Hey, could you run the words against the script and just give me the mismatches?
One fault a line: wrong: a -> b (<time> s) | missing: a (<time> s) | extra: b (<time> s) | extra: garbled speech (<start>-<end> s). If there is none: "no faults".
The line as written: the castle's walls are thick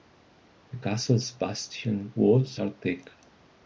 extra: bastion (1.3 s)